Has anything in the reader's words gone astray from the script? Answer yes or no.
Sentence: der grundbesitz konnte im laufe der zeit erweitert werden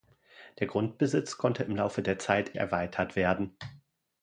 no